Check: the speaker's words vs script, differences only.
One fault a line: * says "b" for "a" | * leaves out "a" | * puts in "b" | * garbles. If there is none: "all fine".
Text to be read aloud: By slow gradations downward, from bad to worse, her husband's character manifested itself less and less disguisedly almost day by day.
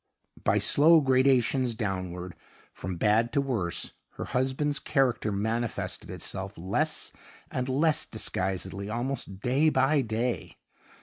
all fine